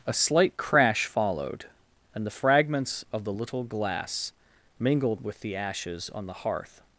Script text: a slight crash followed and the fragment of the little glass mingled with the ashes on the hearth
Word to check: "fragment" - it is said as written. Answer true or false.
false